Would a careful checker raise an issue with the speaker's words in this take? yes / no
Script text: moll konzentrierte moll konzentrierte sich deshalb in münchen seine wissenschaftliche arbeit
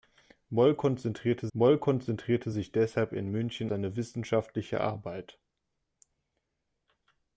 no